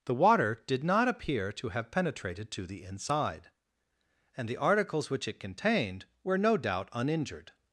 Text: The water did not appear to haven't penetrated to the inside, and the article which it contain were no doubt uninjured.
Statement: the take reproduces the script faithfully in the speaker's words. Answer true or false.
false